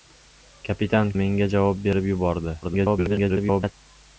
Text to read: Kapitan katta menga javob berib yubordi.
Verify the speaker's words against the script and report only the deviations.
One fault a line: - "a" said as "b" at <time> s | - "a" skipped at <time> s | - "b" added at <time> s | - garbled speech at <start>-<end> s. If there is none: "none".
- "katta" skipped at 1.1 s
- garbled speech at 2.6-3.7 s